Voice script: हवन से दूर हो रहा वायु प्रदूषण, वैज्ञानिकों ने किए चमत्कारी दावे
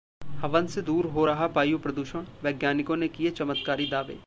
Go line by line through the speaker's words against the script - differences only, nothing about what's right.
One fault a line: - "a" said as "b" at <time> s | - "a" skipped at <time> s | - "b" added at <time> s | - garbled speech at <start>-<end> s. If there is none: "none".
none